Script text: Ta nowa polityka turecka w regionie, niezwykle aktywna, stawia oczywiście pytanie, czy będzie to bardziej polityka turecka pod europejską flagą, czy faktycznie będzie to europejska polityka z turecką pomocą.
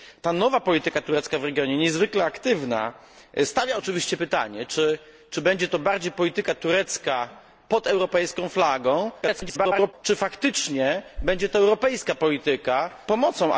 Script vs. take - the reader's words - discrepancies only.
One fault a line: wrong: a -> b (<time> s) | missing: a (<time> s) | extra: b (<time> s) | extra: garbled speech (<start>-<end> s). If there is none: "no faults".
extra: garbled speech (9.2-9.9 s)
missing: z turecką (12.9 s)